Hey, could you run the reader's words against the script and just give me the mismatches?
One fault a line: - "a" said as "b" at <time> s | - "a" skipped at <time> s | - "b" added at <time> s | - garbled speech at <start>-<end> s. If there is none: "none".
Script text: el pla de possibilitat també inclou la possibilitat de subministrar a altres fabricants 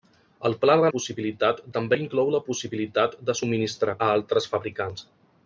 none